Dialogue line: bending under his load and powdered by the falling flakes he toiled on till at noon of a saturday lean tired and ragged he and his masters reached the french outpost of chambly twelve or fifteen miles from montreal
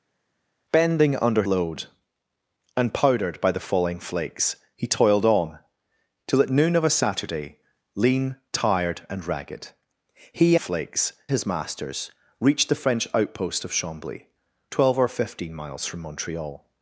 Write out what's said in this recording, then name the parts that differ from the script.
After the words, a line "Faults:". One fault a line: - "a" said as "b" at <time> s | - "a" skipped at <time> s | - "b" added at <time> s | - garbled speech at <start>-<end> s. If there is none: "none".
bending under load and powdered by the falling flakes he toiled on till at noon of a saturday lean tired and ragged he flakes his masters reached the french outpost of chambly twelve or fifteen miles from montreal
Faults:
- "his" skipped at 1.4 s
- "and" said as "flakes" at 10.6 s